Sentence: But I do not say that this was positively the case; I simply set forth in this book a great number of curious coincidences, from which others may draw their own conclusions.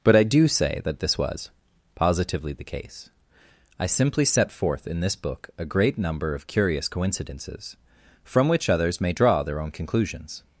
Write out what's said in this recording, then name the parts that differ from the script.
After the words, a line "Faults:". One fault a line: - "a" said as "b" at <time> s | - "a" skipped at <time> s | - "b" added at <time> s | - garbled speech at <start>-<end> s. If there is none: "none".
But I do say that this was positively the case; I simply set forth in this book a great number of curious coincidences, from which others may draw their own conclusions.
Faults:
- "not" skipped at 0.5 s